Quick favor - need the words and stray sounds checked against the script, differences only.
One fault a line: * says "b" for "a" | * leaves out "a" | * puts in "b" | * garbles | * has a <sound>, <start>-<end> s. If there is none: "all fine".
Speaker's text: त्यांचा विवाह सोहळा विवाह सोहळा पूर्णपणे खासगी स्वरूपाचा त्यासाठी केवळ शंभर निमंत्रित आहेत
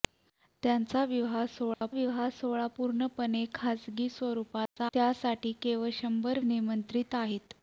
* has a dropout, 1.7-1.8 s
* has a dropout, 4.7-4.8 s